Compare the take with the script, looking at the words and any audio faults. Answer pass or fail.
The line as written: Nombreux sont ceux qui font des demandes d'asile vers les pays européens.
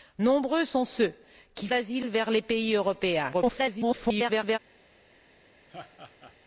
fail